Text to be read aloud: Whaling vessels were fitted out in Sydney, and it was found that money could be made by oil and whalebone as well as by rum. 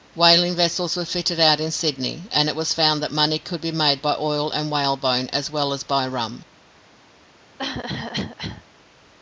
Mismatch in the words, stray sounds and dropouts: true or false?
true